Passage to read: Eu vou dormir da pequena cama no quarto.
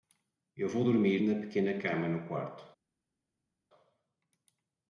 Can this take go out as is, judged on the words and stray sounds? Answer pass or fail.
fail